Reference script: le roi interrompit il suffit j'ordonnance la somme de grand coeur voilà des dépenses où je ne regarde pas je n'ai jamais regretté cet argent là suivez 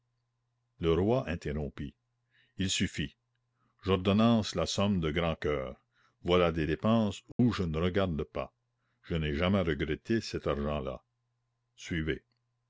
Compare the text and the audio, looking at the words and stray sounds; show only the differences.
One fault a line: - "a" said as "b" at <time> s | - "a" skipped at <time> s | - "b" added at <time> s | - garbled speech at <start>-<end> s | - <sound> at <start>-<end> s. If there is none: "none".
- dropout at 7.3-7.4 s